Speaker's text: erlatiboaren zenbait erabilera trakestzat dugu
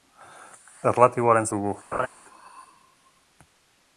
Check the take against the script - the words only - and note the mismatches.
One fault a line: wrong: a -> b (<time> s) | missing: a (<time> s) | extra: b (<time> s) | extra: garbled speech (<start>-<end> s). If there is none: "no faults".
missing: zenbait erabilera trakestzat (1.5 s)